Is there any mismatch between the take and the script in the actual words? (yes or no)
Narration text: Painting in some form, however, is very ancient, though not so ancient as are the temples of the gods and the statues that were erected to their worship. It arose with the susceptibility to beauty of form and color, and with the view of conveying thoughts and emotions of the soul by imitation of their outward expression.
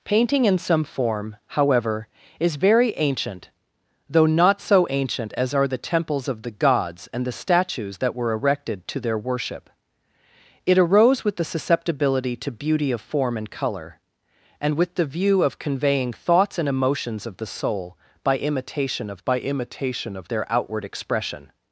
yes